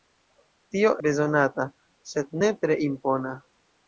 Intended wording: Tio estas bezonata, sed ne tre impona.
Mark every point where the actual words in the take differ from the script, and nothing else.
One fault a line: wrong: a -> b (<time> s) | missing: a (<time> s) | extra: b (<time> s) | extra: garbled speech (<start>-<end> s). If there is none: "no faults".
missing: estas (0.9 s)